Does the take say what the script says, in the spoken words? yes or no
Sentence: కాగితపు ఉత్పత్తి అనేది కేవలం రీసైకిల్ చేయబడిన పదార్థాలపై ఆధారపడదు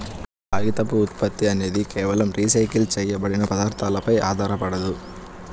yes